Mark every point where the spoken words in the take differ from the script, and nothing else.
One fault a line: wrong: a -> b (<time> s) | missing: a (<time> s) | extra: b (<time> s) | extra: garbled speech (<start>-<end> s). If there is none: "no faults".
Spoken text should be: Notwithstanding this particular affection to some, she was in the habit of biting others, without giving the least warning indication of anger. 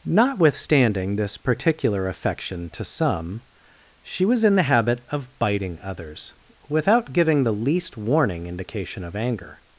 no faults